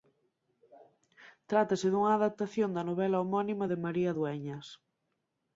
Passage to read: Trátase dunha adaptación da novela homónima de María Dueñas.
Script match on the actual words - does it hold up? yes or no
yes